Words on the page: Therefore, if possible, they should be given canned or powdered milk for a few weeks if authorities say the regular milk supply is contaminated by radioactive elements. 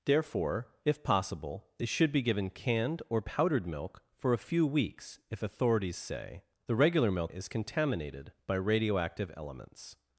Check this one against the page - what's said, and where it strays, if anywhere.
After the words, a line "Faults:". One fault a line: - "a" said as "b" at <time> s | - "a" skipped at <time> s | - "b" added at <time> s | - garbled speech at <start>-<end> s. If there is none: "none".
Therefore, if possible, they should be given canned or powdered milk for a few weeks if authorities say the regular milk is contaminated by radioactive elements.
Faults:
- "supply" skipped at 7.3 s